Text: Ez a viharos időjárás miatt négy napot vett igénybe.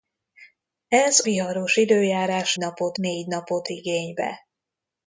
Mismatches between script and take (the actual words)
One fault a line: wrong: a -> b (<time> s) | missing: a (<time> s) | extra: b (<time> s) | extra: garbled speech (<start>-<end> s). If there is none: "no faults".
missing: a (1.2 s)
wrong: miatt -> napot (2.6 s)
missing: vett (3.7 s)